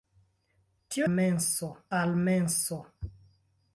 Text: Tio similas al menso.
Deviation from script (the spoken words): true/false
true